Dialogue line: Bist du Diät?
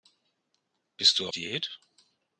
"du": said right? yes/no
yes